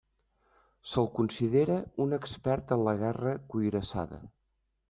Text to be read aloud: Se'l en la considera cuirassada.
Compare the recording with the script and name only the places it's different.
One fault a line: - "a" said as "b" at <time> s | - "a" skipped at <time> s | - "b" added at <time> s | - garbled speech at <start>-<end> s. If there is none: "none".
- "considera un expert" added at 1.2 s
- "considera" said as "guerra" at 3.0 s